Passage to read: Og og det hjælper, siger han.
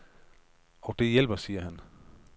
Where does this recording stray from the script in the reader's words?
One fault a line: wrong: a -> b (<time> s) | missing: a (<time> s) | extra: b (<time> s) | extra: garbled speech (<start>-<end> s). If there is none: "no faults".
missing: og (0.9 s)